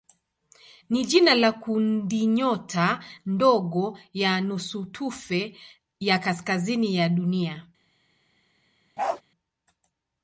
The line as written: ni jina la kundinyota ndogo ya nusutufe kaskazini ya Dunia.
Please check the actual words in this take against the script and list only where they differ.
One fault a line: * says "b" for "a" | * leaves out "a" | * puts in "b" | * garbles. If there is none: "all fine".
* puts in "ya"